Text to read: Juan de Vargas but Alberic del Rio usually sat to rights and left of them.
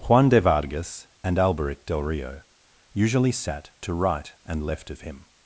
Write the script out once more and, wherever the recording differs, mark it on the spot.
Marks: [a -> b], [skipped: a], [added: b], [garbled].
Juan de Vargas [but -> and] Alberic del Rio usually sat to [rights -> right] and left of [them. -> him]